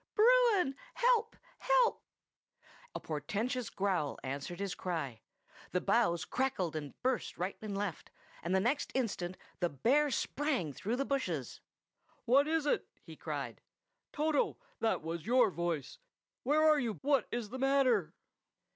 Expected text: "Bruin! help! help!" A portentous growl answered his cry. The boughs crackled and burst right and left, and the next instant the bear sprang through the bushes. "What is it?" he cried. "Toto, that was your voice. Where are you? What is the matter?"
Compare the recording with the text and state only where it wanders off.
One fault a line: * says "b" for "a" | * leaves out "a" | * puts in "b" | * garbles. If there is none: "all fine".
all fine